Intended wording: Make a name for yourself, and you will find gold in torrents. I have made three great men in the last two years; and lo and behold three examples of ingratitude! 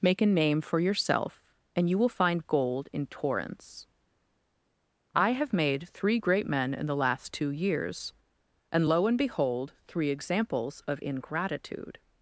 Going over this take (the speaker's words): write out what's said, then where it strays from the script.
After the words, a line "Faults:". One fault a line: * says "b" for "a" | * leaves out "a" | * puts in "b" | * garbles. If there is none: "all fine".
Make a name for yourself, and you will find gold in torrents. I have made three great men in the last two years; and lo and behold three examples of ingratitude!
Faults:
all fine